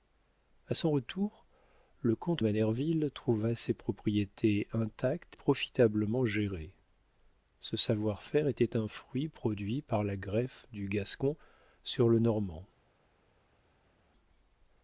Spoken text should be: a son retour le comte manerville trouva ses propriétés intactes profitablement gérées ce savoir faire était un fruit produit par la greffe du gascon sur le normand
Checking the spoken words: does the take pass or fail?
pass